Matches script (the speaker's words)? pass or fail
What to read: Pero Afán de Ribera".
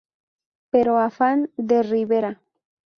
pass